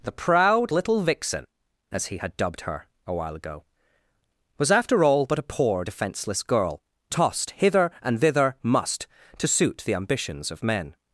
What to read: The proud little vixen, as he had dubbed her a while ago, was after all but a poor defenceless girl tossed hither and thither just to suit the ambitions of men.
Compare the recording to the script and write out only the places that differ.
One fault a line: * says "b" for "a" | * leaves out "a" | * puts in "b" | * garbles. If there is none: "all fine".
* says "must" for "just"